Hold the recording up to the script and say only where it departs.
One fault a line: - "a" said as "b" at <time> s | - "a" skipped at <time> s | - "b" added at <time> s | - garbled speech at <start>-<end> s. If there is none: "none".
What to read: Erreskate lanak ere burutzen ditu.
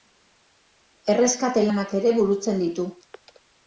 none